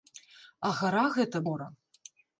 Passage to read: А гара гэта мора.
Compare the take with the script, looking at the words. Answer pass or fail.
pass